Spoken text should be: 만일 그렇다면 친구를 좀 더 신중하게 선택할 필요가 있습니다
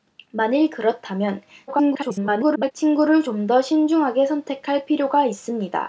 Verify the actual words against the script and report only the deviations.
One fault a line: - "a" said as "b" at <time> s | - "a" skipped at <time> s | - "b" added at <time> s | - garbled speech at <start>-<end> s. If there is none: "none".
- garbled speech at 1.7-2.7 s